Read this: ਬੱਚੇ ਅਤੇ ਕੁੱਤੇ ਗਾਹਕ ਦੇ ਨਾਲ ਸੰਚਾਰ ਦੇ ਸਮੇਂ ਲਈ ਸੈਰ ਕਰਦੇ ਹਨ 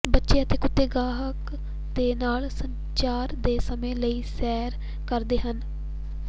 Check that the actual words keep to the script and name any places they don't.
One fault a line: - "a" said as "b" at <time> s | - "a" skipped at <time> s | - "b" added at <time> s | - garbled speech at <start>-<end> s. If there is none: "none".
none